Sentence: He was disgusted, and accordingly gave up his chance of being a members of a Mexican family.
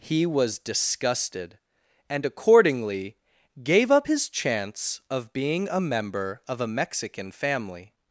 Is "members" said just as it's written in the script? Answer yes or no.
no